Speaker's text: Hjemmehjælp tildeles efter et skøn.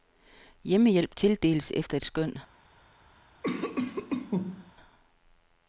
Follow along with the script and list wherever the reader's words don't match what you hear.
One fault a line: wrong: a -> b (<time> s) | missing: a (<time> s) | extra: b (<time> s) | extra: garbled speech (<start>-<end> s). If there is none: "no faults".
no faults